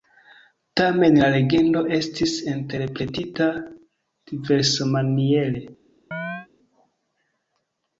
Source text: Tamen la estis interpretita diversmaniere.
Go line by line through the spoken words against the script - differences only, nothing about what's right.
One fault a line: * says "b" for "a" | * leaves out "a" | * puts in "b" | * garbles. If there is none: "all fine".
* puts in "legendo"